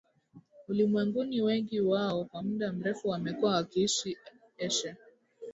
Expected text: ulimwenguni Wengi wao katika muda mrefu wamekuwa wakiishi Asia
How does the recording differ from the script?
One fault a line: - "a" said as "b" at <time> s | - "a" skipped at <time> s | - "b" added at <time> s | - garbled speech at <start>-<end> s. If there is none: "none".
- "katika" said as "kwa" at 2.2 s